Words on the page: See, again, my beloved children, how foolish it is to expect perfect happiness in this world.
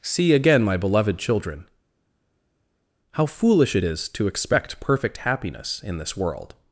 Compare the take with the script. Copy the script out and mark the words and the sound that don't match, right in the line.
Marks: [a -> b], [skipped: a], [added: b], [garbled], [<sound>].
See, again, my beloved children, how foolish it is to expect perfect happiness in this world.